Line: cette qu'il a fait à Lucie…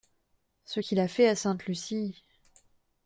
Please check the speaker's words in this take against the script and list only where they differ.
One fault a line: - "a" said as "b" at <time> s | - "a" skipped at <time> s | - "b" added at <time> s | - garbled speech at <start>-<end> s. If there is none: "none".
- "cette" said as "ce" at 0.7 s
- "Sainte" added at 1.3 s